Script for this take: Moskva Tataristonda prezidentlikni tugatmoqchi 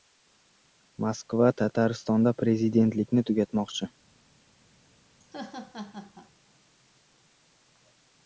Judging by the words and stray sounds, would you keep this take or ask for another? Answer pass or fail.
fail